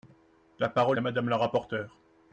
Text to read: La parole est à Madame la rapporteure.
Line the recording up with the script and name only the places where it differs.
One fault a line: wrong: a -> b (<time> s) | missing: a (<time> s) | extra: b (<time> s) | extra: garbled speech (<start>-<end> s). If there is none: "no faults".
missing: est (1.0 s)